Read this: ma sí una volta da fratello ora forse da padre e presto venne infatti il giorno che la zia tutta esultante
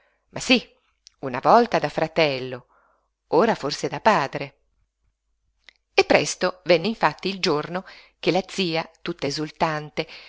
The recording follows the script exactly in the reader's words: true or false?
true